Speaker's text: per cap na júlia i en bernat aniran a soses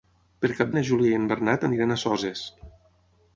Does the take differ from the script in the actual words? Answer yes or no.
no